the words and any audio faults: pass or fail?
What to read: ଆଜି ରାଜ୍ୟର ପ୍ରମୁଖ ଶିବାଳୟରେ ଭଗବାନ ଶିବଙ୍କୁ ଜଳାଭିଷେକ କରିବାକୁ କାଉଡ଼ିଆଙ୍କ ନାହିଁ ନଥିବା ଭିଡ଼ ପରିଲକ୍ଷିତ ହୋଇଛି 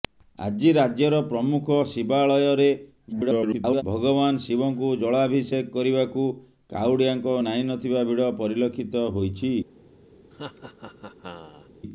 fail